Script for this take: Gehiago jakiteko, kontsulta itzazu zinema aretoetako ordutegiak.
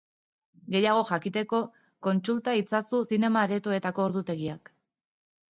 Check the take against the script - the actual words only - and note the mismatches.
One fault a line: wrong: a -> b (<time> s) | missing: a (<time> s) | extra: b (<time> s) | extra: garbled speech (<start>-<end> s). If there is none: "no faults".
no faults